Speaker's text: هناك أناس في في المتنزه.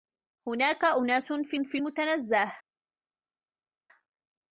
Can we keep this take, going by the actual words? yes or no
yes